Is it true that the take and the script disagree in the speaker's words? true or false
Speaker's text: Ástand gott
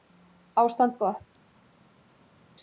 false